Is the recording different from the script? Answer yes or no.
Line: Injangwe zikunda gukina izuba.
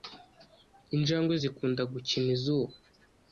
no